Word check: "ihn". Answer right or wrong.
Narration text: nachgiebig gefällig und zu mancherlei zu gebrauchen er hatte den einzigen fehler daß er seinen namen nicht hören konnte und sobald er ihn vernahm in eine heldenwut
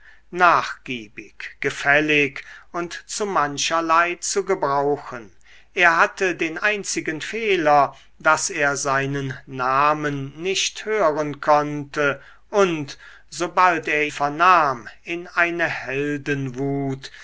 wrong